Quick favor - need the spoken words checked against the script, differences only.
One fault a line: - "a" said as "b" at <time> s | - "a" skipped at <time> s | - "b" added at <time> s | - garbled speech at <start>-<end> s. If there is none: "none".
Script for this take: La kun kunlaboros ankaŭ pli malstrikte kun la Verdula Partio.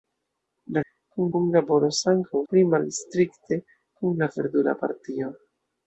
none